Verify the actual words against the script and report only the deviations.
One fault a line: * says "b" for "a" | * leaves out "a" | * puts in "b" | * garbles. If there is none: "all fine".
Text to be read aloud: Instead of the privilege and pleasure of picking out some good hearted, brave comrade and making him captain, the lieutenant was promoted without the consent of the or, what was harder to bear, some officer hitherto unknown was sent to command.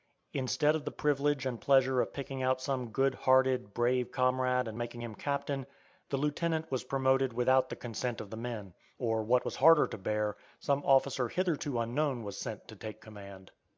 * puts in "men"
* puts in "take"